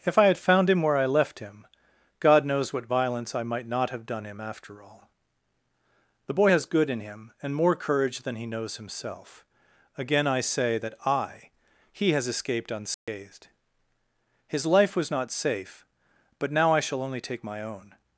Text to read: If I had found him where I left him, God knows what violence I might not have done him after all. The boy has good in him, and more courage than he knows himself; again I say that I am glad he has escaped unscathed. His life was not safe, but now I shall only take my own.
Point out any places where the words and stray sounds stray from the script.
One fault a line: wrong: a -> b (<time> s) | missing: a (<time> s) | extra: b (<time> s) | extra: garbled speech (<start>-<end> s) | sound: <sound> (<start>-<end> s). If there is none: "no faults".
missing: am glad (11.5 s)
sound: dropout (12.9-13.1 s)